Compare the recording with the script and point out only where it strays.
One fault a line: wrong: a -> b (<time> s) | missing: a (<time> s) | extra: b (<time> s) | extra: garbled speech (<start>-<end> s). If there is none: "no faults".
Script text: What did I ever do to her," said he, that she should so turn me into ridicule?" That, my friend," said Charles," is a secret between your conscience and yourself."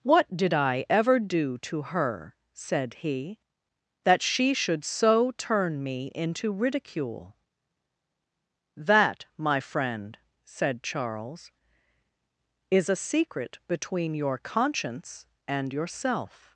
no faults